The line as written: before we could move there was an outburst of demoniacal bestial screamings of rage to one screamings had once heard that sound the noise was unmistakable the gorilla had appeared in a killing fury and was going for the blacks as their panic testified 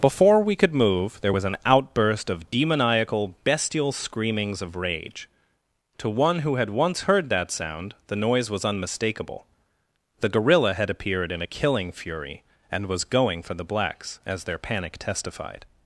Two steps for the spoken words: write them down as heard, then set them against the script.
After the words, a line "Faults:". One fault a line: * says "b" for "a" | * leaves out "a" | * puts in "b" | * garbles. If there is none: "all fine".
before we could move there was an outburst of demoniacal bestial screamings of rage to one who had once heard that sound the noise was unmistakable the gorilla had appeared in a killing fury and was going for the blacks as their panic testified
Faults:
* says "who" for "screamings"